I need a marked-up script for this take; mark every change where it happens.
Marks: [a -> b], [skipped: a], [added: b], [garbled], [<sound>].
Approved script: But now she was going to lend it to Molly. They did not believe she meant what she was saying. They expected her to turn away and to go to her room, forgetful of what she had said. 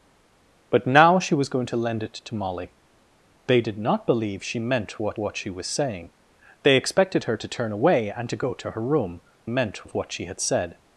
But now she was going to lend it to Molly. They did not believe she meant what [added: what] she was saying. They expected her to turn away and to go to her room, [forgetful -> meant] of what she had said.